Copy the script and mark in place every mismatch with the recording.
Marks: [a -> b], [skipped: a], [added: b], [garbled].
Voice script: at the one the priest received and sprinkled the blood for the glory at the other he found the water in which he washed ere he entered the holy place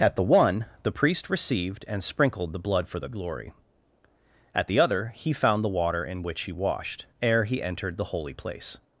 at the one the priest received and sprinkled the blood for the glory at the other he found the water in which he washed ere he entered the holy place